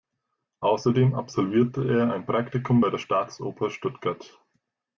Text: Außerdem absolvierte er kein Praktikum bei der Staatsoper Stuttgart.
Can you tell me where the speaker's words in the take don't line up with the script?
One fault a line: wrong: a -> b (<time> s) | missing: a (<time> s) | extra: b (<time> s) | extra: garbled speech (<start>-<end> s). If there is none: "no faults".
wrong: kein -> ein (2.1 s)